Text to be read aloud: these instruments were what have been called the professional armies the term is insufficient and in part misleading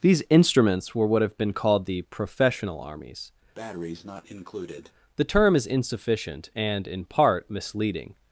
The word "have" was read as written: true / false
true